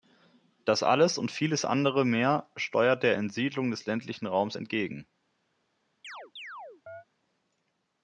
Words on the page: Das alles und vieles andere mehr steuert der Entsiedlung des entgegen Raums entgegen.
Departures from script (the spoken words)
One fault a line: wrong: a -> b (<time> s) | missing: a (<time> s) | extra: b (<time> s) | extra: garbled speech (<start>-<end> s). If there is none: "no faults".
wrong: entgegen -> ländlichen (3.9 s)